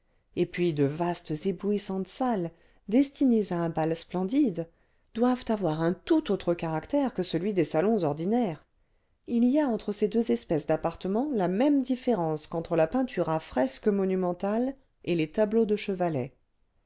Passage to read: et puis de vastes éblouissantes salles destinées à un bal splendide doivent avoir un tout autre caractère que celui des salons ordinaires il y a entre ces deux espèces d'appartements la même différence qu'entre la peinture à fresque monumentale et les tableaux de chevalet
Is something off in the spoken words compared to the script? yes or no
no